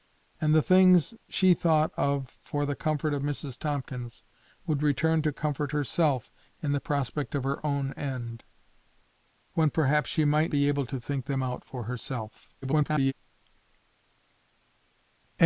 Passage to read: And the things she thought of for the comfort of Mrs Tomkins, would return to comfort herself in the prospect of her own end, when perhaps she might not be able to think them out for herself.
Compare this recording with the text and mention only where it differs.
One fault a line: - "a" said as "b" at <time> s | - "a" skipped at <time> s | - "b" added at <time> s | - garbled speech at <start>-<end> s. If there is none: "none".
- "not" skipped at 10.5 s
- garbled speech at 12.6-13.1 s